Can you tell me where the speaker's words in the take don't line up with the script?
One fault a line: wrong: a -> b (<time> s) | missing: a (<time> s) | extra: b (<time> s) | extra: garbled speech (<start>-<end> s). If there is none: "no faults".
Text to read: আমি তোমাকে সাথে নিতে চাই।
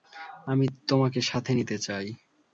no faults